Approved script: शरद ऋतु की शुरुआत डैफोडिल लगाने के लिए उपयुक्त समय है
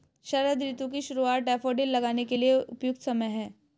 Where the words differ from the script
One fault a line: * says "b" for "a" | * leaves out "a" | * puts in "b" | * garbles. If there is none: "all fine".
all fine